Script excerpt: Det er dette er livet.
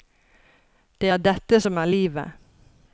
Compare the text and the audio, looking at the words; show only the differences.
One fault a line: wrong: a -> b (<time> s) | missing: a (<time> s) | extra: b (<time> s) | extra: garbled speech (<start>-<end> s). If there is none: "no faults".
extra: som (1.6 s)